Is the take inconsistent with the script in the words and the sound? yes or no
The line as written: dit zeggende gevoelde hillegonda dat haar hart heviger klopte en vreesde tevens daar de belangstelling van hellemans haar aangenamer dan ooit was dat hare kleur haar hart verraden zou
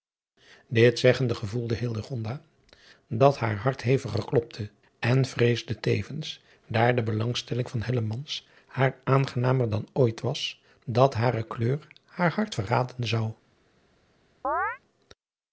yes